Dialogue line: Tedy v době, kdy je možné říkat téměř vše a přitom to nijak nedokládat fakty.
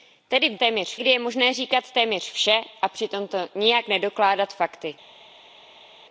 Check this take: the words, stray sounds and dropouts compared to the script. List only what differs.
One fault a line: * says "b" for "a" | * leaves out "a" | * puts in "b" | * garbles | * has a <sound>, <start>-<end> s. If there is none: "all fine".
* says "téměř" for "době"